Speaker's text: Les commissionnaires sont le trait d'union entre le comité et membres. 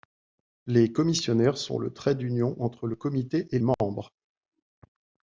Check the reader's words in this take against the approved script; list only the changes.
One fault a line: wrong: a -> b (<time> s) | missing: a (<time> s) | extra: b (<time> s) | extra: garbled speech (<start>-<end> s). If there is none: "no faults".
no faults